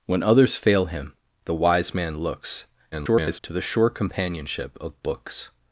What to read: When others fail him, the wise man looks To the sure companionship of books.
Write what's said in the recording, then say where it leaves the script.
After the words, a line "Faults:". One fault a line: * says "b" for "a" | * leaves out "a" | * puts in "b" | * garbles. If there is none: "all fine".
When others fail him, the wise man looks [garbled] To the sure companionship of books.
Faults:
* garbles